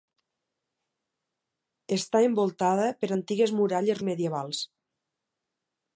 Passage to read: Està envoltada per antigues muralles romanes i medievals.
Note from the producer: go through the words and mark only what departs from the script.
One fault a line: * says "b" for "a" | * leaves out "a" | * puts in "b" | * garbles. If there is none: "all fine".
* leaves out "romanes"